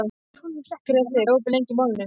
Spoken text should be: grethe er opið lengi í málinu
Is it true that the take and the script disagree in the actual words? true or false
false